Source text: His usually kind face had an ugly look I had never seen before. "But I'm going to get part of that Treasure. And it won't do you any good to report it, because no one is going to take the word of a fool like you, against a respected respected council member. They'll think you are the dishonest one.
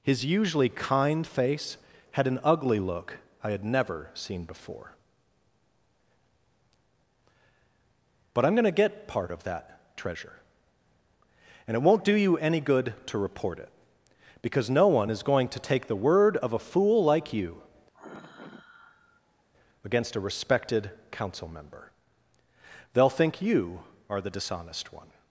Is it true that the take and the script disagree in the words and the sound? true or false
true